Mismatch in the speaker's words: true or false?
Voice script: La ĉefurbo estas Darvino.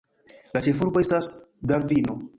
false